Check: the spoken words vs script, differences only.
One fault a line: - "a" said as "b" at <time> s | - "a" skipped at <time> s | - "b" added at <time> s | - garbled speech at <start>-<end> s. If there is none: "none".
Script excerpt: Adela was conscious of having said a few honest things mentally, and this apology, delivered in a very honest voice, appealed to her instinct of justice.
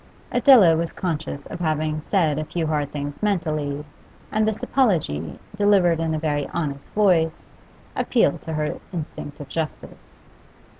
- "honest" said as "hard" at 2.6 s